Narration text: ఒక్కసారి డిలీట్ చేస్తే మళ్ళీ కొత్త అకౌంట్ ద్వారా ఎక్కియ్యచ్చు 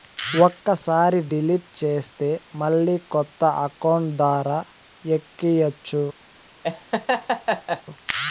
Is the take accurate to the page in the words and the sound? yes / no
no